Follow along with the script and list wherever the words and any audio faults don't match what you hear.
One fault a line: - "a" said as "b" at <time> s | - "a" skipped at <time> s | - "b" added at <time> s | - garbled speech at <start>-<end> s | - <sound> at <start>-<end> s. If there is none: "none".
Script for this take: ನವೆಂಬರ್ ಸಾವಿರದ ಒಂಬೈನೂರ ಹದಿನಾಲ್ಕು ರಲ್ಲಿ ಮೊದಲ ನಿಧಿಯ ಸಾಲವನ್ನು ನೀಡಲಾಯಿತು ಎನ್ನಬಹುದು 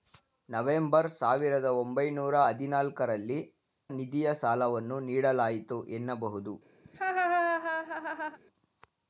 - "ಮೊದಲ" skipped at 3.4 s
- laugh at 6.9-8.4 s